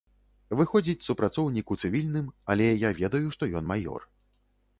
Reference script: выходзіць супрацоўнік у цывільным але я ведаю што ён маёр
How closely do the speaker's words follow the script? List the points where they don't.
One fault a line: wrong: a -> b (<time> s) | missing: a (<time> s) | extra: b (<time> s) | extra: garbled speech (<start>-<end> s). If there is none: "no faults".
no faults